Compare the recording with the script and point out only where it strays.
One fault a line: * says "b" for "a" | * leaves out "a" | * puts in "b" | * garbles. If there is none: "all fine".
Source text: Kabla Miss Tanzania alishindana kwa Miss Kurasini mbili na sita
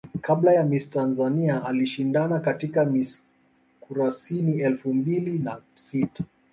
* puts in "ya"
* says "katika" for "kwa"
* puts in "elfu"